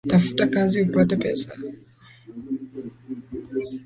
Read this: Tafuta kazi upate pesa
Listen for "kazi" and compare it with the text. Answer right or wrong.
right